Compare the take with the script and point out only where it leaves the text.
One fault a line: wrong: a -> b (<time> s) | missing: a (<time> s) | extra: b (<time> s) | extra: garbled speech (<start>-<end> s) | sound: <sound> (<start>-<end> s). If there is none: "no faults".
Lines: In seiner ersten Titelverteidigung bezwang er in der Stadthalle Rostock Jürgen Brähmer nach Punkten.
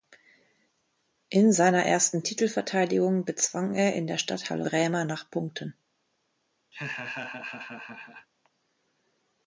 missing: Rostock Jürgen (4.6 s)
sound: laugh (6.7-8.3 s)